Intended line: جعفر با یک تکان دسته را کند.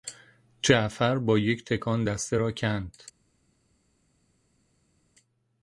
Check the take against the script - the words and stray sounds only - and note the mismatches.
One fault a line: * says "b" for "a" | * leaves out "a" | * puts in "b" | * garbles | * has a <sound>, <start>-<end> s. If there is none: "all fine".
all fine